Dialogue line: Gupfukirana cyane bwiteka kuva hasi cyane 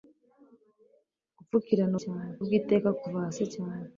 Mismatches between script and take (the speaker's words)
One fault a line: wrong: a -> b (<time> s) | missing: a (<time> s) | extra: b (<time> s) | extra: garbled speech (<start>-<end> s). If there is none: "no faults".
no faults